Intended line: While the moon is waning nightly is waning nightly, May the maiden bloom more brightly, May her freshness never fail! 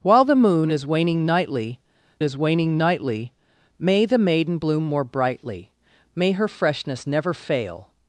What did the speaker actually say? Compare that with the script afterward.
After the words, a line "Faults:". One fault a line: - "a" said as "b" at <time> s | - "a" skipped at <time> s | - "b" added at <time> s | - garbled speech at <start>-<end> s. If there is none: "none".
While the moon is waning nightly is waning nightly, May the maiden bloom more brightly, May her freshness never fail!
Faults:
none